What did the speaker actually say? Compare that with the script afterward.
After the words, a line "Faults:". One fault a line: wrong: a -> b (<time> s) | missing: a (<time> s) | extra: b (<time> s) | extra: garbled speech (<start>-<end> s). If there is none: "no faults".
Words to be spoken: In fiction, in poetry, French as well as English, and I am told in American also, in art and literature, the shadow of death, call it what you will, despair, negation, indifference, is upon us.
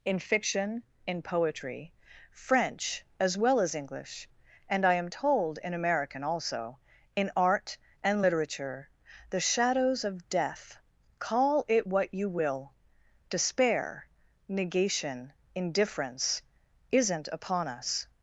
In fiction, in poetry, French as well as English, and I am told in American also, in art and literature, the shadows of death, call it what you will, despair, negation, indifference, isn't upon us.
Faults:
wrong: shadow -> shadows (9.4 s)
wrong: is -> isn't (16.9 s)